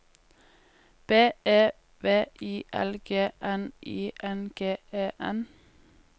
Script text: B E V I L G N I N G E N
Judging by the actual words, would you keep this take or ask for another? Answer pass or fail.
pass